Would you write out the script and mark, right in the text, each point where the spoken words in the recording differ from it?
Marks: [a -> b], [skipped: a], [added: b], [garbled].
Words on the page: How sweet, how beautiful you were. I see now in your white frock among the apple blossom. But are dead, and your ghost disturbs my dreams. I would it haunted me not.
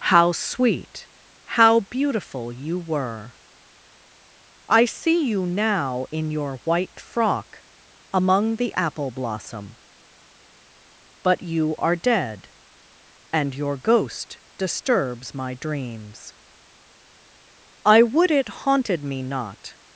How sweet, how beautiful you were. I see [added: you] now in your white frock among the apple blossom. But [added: you] are dead, and your ghost disturbs my dreams. I would it haunted me not.